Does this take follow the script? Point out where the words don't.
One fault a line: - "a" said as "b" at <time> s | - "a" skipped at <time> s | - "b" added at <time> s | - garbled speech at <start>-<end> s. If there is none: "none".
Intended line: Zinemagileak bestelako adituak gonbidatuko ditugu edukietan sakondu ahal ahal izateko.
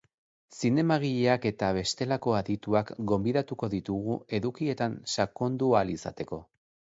- "eta" added at 1.5 s
- "ahal" skipped at 5.9 s